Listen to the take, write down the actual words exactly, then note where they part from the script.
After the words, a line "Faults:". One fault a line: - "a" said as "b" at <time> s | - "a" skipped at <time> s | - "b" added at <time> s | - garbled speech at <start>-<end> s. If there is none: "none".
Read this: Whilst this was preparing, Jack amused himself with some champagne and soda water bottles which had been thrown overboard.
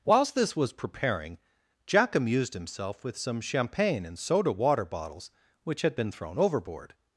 Whilst this was preparing, Jack amused himself with some champagne and soda water bottles which had been thrown overboard.
Faults:
none